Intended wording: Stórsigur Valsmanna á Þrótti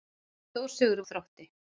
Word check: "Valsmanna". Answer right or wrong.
wrong